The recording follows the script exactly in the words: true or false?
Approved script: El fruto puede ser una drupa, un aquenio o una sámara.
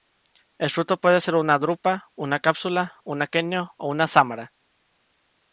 false